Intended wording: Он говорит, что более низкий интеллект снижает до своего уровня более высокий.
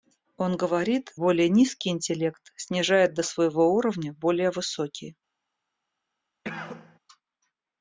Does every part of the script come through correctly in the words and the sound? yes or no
no